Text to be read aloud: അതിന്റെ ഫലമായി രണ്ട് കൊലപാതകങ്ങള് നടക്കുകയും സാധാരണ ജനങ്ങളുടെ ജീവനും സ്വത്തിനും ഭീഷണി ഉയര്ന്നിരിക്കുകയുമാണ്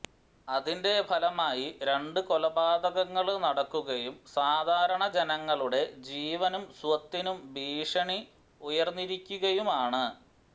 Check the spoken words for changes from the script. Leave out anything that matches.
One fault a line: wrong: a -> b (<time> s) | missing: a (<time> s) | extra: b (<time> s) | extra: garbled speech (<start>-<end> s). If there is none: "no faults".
no faults